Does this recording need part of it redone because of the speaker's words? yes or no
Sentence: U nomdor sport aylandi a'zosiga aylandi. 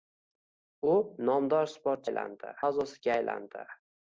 no